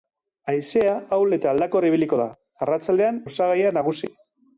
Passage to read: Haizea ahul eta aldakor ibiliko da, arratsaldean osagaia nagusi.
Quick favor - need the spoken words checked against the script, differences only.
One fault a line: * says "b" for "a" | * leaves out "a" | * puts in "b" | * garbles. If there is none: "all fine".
all fine